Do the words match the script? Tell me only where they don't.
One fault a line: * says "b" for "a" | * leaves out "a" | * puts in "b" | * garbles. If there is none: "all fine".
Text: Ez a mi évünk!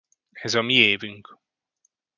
all fine